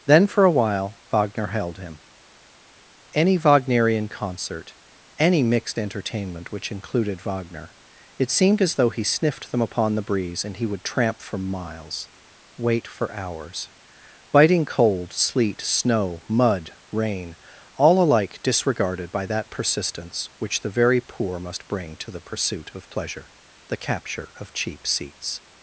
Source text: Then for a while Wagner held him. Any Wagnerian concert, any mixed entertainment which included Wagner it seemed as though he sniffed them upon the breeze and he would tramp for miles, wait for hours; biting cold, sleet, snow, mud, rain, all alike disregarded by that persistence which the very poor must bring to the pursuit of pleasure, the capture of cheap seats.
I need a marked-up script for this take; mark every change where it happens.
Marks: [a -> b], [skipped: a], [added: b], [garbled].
Then for a while Wagner held him. Any Wagnerian concert, any mixed entertainment which included Wagner it seemed as though he sniffed them upon the breeze and he would tramp for miles, wait for hours; biting cold, sleet, snow, mud, rain, all alike disregarded by that persistence which the very poor must bring to the pursuit of pleasure, the capture of cheap seats.